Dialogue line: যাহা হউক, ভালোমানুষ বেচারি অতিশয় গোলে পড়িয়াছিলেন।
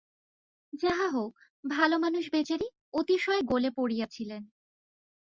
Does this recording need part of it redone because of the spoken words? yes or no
no